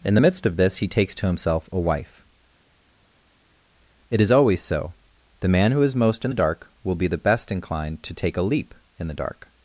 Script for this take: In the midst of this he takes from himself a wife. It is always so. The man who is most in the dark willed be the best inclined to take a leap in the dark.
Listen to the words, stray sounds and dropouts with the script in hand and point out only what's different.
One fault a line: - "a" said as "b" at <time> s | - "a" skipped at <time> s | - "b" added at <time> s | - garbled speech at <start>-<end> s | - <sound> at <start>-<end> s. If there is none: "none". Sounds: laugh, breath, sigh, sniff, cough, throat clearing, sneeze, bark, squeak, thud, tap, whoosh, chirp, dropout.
- "from" said as "to" at 1.2 s
- "willed" said as "will" at 6.8 s